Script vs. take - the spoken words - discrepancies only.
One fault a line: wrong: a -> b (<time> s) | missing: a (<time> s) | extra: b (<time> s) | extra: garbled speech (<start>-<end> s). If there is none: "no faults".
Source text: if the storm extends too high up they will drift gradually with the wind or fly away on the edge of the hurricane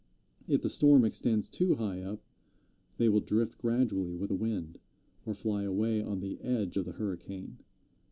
no faults